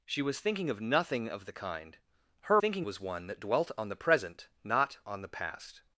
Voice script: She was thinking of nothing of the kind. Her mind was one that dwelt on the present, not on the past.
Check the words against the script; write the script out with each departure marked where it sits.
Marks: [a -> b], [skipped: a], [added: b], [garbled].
She was thinking of nothing of the kind. Her [mind -> thinking] was one that dwelt on the present, not on the past.